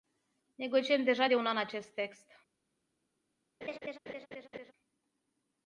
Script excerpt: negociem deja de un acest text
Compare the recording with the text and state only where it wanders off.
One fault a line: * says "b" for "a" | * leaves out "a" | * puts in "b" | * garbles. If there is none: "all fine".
* puts in "an"